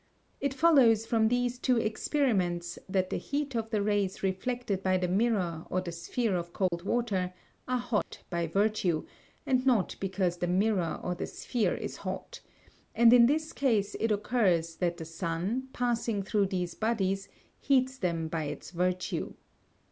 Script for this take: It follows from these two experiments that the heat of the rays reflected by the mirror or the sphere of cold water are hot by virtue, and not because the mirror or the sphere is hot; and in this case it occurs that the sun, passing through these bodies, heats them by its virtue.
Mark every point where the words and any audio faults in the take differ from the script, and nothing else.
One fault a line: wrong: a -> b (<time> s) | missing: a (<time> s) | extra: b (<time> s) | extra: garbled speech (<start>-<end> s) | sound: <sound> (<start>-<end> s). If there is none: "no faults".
sound: dropout (6.7-6.7 s)
sound: dropout (8.0-8.1 s)